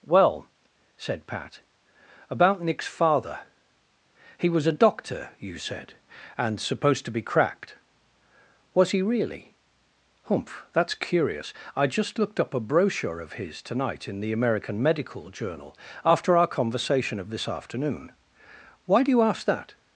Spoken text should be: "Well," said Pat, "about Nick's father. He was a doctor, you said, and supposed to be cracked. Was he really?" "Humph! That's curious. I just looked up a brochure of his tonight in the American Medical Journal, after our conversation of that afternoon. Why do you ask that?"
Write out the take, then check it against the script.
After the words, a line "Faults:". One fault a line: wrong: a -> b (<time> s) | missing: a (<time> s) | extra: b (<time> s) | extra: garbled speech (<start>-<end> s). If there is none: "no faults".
"Well," said Pat, "about Nick's father. He was a doctor, you said, and supposed to be cracked. Was he really?" "Humph! That's curious. I just looked up a brochure of his tonight in the American Medical Journal, after our conversation of this afternoon. Why do you ask that?"
Faults:
wrong: that -> this (17.3 s)